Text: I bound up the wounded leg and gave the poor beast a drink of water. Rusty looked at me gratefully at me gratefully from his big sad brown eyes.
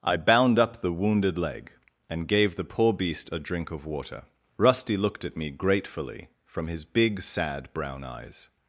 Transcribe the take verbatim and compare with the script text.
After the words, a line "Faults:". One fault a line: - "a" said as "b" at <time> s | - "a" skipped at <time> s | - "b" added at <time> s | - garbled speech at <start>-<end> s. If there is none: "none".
I bound up the wounded leg and gave the poor beast a drink of water. Rusty looked at me gratefully from his big sad brown eyes.
Faults:
- "at me gratefully" skipped at 6.3 s